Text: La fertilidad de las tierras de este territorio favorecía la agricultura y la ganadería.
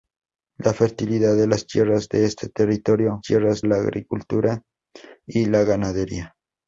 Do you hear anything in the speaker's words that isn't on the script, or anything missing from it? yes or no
yes